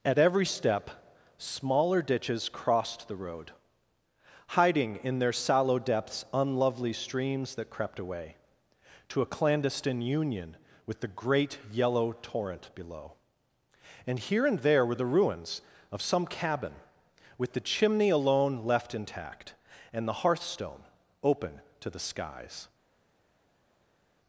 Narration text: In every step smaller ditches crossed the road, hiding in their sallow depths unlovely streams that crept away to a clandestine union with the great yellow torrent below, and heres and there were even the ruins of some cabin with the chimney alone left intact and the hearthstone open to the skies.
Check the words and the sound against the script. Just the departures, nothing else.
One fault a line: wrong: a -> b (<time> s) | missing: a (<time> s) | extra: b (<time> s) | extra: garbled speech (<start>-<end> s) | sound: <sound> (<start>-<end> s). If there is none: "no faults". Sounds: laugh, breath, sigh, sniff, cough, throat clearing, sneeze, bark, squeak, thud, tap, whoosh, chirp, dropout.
wrong: In -> At (0.0 s)
wrong: heres -> here (14.2 s)
missing: even (14.9 s)